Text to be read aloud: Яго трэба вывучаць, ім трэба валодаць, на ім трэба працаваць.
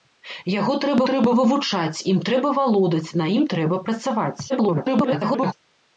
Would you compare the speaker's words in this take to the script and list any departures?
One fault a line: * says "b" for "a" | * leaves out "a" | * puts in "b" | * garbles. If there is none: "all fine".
* puts in "трэба"
* garbles